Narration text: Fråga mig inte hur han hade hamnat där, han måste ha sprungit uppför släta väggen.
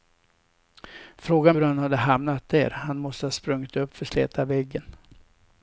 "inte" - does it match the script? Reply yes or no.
no